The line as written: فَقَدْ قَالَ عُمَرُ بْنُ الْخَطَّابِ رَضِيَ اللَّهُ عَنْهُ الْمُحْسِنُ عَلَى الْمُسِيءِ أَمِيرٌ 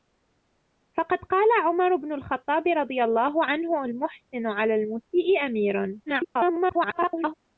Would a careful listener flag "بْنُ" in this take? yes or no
no